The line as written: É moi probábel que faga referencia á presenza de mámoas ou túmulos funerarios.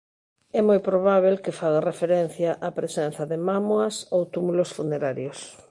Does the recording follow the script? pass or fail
pass